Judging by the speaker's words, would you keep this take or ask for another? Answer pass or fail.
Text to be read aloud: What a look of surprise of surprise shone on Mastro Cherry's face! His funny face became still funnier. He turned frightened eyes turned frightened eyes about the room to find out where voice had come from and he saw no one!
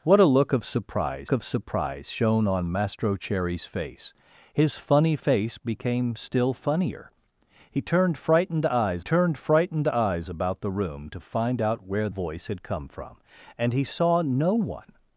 pass